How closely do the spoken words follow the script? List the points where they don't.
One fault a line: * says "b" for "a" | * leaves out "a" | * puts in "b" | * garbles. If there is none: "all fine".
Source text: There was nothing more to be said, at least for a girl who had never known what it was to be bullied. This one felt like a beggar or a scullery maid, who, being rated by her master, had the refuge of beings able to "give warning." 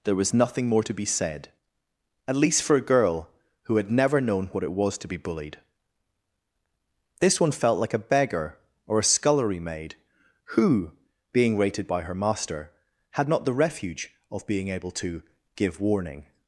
* puts in "not"
* says "being" for "beings"